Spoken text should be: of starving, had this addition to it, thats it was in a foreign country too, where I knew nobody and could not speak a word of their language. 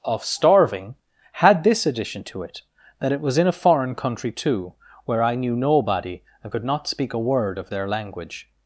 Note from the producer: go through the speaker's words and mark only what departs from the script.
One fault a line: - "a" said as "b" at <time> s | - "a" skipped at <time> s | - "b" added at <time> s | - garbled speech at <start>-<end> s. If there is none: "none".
- "thats" said as "that" at 3.0 s